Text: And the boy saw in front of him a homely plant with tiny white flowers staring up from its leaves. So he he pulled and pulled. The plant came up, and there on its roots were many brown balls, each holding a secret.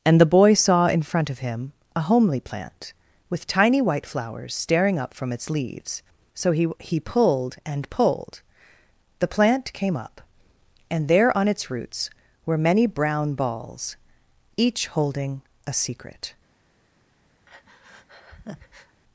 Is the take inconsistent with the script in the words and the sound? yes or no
yes